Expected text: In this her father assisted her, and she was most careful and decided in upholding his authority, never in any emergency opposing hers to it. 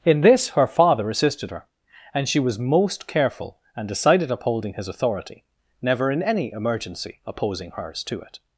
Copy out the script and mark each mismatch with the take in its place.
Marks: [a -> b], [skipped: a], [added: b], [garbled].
In this her father assisted her, and she was most careful and decided [skipped: in] upholding his authority, never in any emergency opposing hers to it.